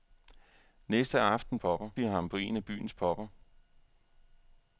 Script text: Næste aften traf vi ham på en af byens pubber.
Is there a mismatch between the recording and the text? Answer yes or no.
yes